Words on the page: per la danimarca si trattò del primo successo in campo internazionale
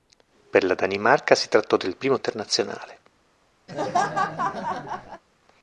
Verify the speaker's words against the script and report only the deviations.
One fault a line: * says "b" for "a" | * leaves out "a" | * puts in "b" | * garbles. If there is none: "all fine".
* leaves out "successo in campo"